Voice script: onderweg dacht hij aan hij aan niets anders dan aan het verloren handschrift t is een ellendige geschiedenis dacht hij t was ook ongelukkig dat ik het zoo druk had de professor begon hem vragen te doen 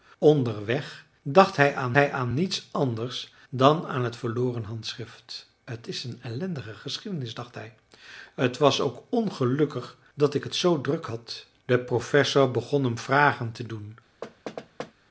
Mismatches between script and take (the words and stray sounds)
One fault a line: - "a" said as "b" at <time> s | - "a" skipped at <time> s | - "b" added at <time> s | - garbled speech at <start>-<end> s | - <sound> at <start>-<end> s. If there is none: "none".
- thud at 14.2-14.9 s